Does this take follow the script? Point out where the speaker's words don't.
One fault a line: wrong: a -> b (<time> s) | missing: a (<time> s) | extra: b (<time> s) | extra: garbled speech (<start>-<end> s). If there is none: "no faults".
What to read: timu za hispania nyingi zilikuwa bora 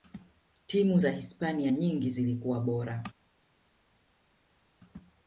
no faults